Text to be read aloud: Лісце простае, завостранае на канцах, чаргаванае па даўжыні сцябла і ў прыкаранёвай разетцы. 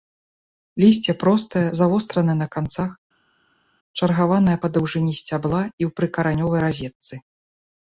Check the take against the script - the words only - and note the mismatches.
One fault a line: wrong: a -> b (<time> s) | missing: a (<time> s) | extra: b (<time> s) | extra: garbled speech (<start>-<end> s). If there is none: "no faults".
no faults